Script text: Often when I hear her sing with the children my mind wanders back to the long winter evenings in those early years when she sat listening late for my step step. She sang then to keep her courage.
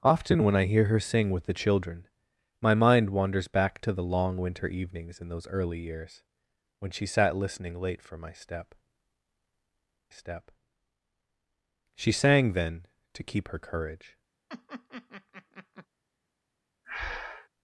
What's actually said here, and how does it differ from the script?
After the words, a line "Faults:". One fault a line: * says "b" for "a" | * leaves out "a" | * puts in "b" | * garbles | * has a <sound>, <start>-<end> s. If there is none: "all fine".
Often when I hear her sing with the children my mind wanders back to the long winter evenings in those early years when she sat listening late for my step step. She sang then to keep her courage.
Faults:
* has a laugh, 14.5-15.9 s
* has a breath, 16.8-17.5 s